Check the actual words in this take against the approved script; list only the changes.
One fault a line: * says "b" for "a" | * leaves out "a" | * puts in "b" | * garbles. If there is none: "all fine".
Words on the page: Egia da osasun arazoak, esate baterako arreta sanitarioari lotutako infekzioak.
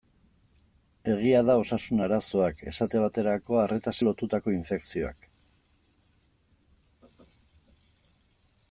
* leaves out "sanitarioari"